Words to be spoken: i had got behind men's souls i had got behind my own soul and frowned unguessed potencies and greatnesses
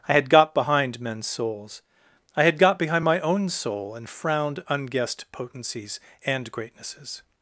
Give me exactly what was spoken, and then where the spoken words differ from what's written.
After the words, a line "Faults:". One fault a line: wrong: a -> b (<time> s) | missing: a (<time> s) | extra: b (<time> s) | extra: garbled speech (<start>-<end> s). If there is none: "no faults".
i had got behind men's souls i had got behind my own soul and frowned unguessed potencies and greatnesses
Faults:
no faults